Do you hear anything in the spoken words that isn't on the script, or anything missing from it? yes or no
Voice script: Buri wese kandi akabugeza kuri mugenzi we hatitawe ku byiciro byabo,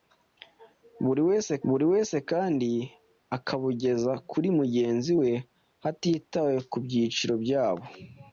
yes